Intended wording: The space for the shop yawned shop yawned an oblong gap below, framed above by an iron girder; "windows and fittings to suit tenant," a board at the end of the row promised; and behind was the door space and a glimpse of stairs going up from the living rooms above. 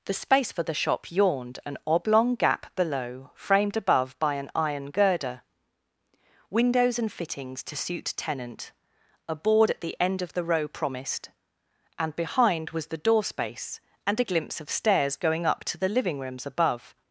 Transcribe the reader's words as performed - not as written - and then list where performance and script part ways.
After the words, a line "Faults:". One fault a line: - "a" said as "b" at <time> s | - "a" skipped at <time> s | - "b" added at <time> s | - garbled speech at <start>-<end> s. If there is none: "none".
The space for the shop yawned an oblong gap below, framed above by an iron girder; "windows and fittings to suit tenant," a board at the end of the row promised; and behind was the door space and a glimpse of stairs going up to the living rooms above.
Faults:
- "shop yawned" skipped at 1.6 s
- "from" said as "to" at 15.6 s